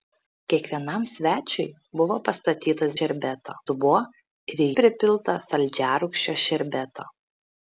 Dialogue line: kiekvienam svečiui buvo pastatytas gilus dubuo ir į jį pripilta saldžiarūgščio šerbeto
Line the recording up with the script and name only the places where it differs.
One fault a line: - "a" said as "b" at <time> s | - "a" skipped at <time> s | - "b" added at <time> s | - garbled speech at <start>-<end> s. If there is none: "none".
- "gilus" said as "šerbeto" at 3.0 s
- "jį" skipped at 4.7 s